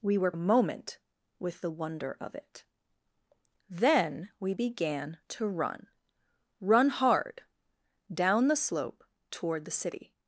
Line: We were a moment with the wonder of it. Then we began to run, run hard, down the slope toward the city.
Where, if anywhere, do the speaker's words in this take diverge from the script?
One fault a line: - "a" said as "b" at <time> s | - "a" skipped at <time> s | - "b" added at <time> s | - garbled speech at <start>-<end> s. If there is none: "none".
none